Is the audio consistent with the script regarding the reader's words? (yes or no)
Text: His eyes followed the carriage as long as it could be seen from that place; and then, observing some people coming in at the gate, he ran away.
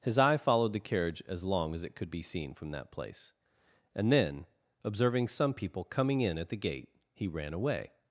no